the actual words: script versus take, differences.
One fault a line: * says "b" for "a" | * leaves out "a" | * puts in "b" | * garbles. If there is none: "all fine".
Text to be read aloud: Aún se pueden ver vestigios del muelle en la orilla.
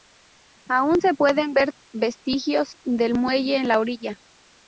all fine